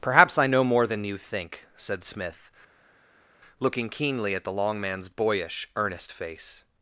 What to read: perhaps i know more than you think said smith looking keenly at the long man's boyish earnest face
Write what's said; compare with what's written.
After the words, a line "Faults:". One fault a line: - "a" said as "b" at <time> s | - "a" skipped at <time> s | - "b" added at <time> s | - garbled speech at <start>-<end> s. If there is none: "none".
perhaps i know more than you think said smith looking keenly at the long man's boyish earnest face
Faults:
none